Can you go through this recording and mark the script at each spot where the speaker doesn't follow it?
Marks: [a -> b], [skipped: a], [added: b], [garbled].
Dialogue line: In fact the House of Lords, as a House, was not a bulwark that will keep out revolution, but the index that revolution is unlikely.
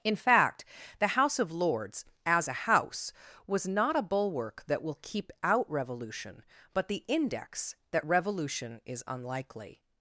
In fact the House of Lords, as a House, was not a bulwark that will keep out revolution, but the index that revolution is unlikely.